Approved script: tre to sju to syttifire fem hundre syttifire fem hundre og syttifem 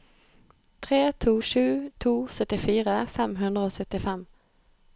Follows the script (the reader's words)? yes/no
no